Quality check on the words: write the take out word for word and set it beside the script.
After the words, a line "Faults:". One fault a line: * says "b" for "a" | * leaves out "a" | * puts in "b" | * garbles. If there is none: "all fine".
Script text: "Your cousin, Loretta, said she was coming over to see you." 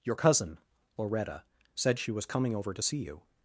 "Your cousin, Loretta, said she was coming over to see you."
Faults:
all fine